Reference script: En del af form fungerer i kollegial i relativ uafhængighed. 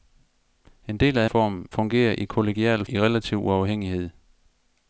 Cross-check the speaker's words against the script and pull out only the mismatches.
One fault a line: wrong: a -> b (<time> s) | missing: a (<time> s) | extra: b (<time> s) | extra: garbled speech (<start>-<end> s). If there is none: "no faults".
no faults